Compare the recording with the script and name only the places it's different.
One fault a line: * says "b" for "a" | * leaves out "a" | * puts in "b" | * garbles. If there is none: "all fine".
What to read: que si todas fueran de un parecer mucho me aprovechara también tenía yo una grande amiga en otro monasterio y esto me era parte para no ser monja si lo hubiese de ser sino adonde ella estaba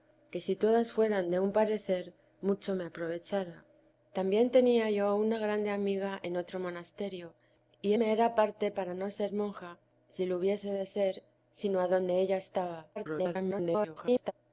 * leaves out "esto"
* garbles